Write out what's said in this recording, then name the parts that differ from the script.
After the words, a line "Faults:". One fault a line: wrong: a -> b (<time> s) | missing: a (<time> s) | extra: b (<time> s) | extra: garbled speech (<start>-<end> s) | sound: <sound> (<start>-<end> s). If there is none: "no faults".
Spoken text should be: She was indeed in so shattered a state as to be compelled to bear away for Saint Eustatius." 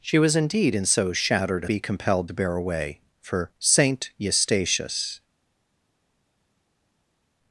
She was indeed in so shattered a be compelled to bear away for Saint Eustatius."
Faults:
missing: state as to (1.7 s)